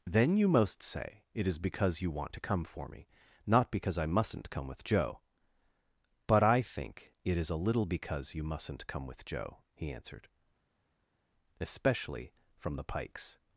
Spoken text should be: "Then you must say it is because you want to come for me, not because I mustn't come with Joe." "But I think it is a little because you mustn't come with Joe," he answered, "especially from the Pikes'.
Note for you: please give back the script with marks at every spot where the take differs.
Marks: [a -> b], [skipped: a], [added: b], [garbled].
"Then you [must -> most] say it is because you want to come for me, not because I mustn't come with Joe." "But I think it is a little because you mustn't come with Joe," he answered, "especially from the Pikes'.